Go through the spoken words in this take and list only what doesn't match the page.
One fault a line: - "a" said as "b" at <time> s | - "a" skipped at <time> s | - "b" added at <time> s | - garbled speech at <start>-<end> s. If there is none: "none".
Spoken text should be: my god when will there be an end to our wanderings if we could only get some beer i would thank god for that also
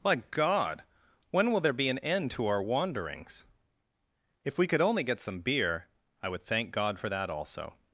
none